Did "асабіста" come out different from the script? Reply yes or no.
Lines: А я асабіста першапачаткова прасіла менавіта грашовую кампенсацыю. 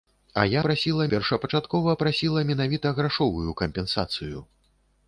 yes